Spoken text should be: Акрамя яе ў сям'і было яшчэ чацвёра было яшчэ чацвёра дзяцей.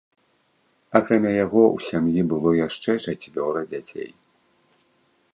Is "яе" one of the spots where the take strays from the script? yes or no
yes